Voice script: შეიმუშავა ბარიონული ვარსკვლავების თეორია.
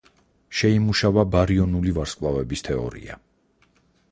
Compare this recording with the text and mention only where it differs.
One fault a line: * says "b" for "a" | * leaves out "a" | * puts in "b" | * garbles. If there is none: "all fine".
all fine